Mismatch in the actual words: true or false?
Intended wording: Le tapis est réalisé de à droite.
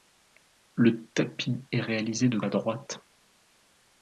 false